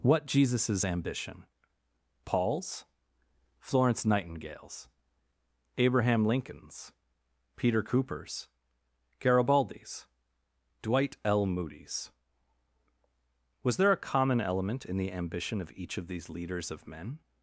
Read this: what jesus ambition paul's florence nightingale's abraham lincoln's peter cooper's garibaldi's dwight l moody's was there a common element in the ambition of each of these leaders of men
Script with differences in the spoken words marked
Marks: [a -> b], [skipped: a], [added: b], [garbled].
what jesus ambition paul's florence nightingale's abraham lincoln's peter cooper's garibaldi's dwight l moody's was there a common element in the ambition of each of these leaders of men